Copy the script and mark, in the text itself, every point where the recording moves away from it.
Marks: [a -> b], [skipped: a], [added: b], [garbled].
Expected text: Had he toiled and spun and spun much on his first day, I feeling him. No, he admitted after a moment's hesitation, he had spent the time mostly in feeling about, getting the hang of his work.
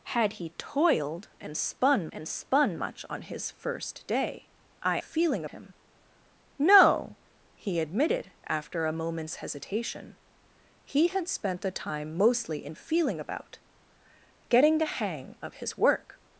Had he toiled and spun and spun much on his first day, I feeling him. No, he admitted after a moment's hesitation, he had spent the time mostly in feeling about, getting the hang of his work.